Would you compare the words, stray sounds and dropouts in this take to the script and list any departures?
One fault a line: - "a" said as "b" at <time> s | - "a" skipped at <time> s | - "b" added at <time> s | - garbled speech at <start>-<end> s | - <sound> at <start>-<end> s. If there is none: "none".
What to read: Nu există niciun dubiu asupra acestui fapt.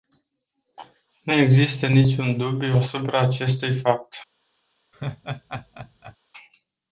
- laugh at 4.9-6.2 s